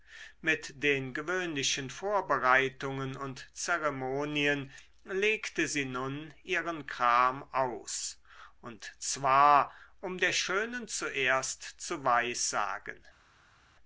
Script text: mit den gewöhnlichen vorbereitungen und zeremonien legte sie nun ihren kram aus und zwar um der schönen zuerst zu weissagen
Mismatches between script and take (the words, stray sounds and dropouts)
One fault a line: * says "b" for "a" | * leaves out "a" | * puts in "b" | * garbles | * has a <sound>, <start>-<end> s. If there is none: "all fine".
all fine